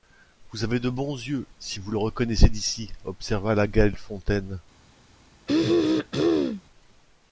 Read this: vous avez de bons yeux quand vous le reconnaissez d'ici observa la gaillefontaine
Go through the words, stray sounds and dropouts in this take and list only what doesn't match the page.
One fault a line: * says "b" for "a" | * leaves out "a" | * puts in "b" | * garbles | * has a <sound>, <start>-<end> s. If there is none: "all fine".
* says "si" for "quand"
* has a throat clearing, 5.5-6.6 s